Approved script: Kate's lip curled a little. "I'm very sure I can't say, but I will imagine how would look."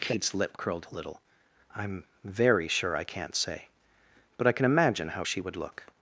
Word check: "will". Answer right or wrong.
wrong